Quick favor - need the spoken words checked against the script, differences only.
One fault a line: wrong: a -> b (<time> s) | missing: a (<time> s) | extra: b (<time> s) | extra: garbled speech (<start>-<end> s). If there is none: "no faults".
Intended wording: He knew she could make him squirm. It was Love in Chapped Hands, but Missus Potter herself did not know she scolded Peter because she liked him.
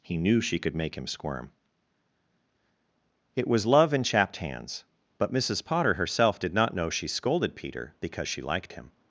no faults